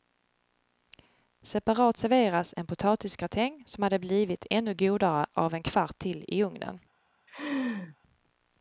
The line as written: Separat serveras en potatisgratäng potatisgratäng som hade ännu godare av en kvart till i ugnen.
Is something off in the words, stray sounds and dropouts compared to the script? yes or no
yes